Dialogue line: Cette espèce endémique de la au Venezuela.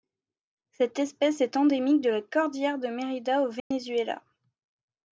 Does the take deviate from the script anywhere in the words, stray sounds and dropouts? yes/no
yes